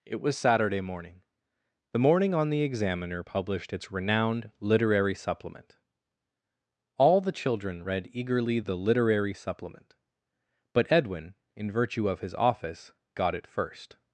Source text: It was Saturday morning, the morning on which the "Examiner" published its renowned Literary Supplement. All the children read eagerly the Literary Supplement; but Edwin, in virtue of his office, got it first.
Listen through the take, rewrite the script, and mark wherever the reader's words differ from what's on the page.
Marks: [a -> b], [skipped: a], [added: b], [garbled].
It was Saturday morning, the morning on [skipped: which] the "Examiner" published its renowned Literary Supplement. All the children read eagerly the Literary Supplement; but Edwin, in virtue of his office, got it first.